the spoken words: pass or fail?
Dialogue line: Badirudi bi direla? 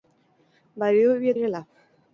pass